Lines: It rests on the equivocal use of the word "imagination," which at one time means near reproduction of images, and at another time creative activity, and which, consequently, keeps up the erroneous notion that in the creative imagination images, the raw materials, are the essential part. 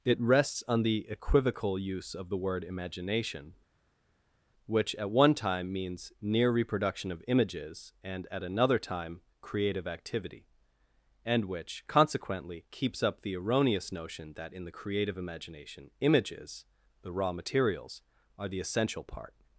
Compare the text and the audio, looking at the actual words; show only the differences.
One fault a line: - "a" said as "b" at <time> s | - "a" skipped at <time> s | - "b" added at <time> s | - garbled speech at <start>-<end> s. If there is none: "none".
none